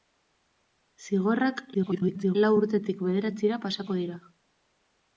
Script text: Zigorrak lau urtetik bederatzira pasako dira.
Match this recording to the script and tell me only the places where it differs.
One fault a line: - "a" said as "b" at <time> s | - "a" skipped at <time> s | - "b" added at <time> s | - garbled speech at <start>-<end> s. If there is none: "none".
- garbled speech at 1.7-2.4 s